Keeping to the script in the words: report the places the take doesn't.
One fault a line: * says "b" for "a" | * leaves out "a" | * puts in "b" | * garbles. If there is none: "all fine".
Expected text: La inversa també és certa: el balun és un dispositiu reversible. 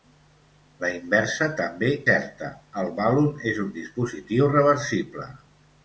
* leaves out "és"